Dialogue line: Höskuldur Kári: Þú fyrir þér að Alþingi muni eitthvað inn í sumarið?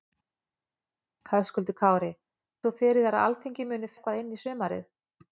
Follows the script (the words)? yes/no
yes